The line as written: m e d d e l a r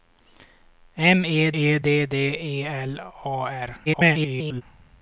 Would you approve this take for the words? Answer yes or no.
no